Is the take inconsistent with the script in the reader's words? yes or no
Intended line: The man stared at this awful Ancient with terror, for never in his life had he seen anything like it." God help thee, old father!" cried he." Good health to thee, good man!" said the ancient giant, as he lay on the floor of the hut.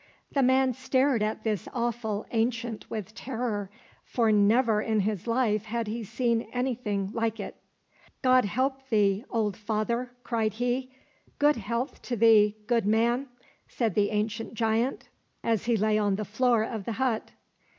no